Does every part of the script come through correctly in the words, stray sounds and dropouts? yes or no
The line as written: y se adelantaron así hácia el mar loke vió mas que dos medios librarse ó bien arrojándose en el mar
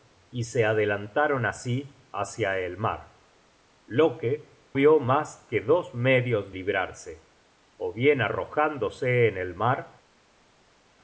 yes